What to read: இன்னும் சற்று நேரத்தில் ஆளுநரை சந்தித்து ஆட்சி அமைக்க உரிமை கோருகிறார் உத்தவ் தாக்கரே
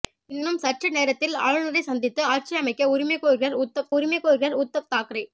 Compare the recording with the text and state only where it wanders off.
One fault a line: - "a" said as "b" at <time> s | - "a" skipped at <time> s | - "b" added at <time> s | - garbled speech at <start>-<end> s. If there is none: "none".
- "உரிமை கோருகிறார் உத்தவ்" added at 3.9 s